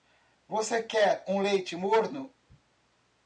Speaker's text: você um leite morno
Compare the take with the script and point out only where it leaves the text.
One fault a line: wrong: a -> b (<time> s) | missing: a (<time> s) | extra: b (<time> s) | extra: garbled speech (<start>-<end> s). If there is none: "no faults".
extra: quer (0.8 s)